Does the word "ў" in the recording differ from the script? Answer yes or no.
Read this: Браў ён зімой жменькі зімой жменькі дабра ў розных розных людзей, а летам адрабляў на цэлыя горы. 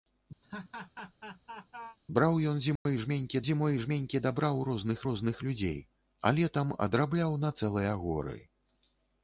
no